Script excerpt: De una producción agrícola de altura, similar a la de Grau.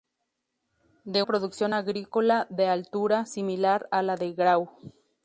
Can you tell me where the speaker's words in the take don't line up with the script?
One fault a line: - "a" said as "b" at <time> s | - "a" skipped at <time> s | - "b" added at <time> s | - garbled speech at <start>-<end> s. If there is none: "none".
- "una" skipped at 1.2 s